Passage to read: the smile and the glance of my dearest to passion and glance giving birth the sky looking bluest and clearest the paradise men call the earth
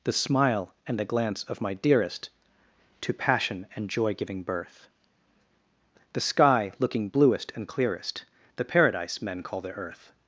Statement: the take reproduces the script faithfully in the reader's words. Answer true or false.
false